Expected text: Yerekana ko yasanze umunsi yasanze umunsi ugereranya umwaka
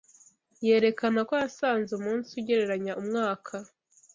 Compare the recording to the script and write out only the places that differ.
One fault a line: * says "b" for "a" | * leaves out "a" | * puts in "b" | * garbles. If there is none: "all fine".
* leaves out "yasanze umunsi"